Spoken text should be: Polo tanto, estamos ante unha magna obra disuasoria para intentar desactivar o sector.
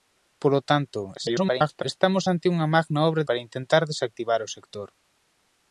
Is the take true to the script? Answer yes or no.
no